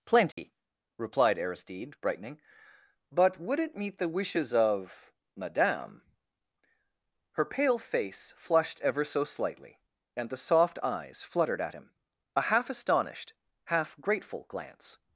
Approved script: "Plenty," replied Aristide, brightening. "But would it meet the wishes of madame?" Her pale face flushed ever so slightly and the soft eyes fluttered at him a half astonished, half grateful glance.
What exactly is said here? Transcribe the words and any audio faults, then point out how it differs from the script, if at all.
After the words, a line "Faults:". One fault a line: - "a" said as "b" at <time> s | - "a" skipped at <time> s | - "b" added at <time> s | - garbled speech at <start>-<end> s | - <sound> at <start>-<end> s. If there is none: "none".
"Plenty," replied Aristide, brightening. "But would it meet the wishes of madame?" Her pale face flushed ever so slightly and the soft eyes fluttered at him a half astonished, half grateful glance.
Faults:
- dropout at 0.3-0.4 s